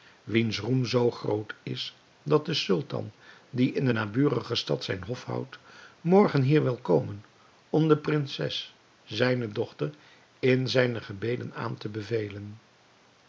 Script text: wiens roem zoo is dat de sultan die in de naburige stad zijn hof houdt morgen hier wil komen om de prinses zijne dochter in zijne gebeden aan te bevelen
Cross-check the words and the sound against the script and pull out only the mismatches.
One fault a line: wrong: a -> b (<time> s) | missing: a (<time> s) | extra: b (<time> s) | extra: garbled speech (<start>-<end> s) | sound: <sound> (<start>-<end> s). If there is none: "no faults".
extra: groot (1.1 s)